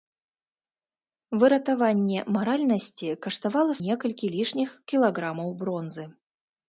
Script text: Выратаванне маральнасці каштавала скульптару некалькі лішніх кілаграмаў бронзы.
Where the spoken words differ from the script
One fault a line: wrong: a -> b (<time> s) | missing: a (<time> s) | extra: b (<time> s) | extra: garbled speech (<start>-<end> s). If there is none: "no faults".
missing: скульптару (3.7 s)